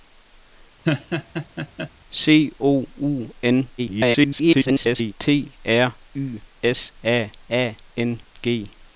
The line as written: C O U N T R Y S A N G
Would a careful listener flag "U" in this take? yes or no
no